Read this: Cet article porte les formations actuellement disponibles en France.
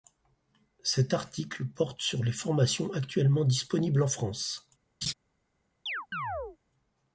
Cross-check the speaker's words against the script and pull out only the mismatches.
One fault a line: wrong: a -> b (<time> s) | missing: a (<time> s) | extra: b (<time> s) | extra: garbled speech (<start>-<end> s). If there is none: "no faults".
extra: sur (2.0 s)